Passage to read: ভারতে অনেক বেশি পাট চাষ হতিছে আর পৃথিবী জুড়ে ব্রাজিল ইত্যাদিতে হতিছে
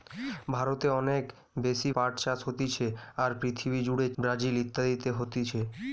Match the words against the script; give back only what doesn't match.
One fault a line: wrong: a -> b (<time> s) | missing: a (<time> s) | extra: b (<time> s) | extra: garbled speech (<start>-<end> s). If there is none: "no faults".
no faults